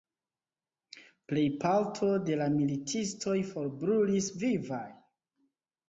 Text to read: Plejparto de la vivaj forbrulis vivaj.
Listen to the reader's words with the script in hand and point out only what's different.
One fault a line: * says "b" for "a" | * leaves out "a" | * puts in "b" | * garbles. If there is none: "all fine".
* says "militistoj" for "vivaj"